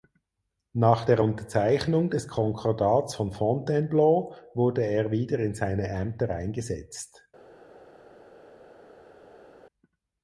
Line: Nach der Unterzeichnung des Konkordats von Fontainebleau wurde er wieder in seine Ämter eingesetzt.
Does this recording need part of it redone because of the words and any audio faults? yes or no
no